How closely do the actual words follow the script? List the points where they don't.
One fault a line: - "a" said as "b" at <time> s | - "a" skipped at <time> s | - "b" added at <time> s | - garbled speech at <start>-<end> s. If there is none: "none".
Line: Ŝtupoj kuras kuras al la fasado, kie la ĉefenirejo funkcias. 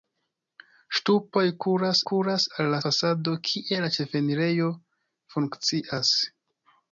none